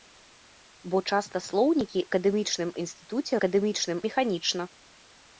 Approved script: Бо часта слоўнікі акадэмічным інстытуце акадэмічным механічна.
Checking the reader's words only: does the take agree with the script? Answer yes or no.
yes